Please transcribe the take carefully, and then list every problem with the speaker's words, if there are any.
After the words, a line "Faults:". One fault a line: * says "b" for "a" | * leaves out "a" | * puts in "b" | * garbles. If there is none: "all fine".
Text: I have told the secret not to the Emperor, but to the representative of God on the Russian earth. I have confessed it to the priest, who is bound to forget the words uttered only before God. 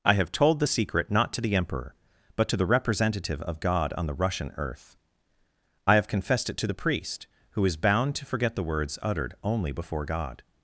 I have told the secret not to the Emperor, but to the representative of God on the Russian earth. I have confessed it to the priest, who is bound to forget the words uttered only before God.
Faults:
all fine